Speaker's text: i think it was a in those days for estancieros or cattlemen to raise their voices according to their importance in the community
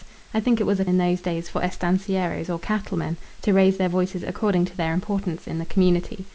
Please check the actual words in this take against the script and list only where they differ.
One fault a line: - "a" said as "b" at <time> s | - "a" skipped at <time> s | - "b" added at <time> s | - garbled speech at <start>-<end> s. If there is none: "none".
none